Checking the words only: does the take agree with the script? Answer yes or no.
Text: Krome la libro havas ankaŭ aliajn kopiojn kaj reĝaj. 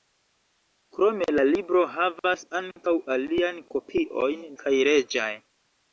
yes